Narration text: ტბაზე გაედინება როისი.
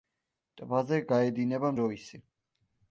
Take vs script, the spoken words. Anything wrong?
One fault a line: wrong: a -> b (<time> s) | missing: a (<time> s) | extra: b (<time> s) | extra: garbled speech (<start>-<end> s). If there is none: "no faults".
no faults